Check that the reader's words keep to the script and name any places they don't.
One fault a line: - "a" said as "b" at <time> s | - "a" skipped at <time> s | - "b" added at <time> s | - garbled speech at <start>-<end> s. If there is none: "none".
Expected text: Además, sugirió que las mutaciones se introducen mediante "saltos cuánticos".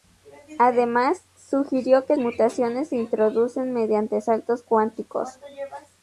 - "las" skipped at 2.1 s